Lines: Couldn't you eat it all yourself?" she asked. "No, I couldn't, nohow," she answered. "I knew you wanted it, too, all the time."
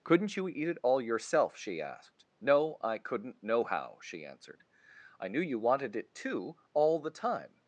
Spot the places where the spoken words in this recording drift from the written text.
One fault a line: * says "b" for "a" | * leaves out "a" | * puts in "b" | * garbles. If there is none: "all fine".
all fine